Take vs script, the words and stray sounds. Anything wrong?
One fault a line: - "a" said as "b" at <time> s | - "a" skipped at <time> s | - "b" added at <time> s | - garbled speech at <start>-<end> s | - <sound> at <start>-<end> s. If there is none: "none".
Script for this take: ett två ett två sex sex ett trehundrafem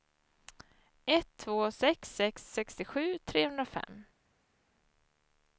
- "ett två" skipped at 1.7 s
- "ett" said as "sextiosju" at 2.5 s